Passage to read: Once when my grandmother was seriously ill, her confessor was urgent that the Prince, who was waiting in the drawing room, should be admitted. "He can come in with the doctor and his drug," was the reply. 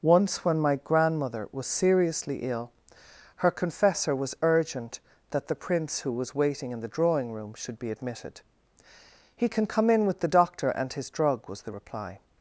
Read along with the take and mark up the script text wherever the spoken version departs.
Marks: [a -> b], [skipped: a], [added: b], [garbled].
Once when my grandmother was seriously ill, her confessor was urgent that the Prince, who was waiting in the drawing room, should be admitted. "He can come in with the doctor and his drug," was the reply.